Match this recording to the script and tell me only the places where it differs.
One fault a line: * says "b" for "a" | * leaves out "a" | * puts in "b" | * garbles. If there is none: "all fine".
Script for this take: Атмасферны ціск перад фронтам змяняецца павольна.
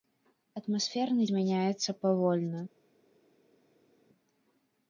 * leaves out "ціск перад фронтам"